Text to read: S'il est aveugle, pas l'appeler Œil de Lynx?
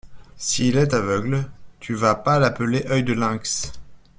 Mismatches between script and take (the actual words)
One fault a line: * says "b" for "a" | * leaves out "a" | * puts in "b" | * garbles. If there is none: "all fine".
* puts in "tu vas"